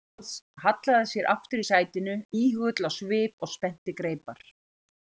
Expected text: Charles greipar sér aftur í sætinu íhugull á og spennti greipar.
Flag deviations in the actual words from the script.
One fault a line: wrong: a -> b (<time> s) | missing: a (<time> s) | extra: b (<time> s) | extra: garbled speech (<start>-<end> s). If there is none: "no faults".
wrong: greipar -> hallaði (0.8 s)
extra: svip (3.0 s)